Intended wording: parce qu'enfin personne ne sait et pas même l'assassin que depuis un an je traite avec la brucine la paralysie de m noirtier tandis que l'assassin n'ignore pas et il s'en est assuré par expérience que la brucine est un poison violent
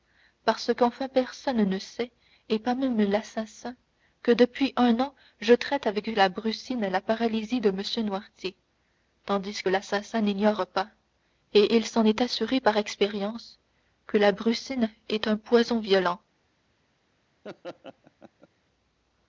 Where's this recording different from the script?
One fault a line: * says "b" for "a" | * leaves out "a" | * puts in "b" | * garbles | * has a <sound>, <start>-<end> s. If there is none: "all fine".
* has a laugh, 17.4-18.5 s